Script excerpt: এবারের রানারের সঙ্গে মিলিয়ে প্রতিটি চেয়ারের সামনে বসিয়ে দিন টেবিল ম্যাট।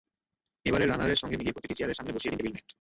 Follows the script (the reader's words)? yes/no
yes